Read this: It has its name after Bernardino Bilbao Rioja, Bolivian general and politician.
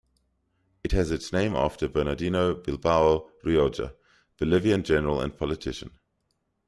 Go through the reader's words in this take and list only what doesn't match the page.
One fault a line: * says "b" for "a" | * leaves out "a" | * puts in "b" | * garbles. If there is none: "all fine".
all fine